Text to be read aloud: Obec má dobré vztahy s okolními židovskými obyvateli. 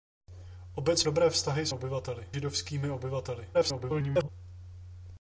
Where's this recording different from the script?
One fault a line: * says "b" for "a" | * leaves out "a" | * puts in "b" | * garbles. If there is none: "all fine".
* leaves out "má"
* says "obyvateli" for "okolními"
* garbles